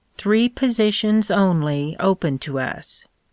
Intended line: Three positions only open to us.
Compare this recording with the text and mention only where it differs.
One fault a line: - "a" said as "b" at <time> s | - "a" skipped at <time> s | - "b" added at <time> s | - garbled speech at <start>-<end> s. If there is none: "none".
none